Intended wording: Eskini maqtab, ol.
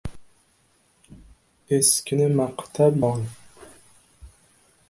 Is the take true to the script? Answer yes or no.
yes